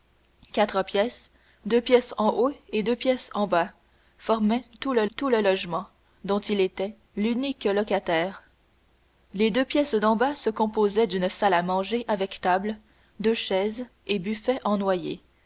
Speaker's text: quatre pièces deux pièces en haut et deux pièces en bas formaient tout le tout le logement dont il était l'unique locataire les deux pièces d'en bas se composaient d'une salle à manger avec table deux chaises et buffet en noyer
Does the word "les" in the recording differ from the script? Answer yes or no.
no